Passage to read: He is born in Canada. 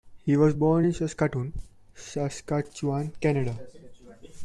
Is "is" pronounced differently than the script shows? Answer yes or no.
yes